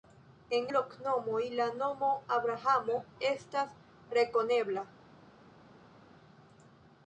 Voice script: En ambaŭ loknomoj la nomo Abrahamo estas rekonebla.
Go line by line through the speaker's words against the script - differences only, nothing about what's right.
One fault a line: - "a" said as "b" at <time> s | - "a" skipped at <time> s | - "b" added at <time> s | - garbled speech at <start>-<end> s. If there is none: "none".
- "ambaŭ" skipped at 0.7 s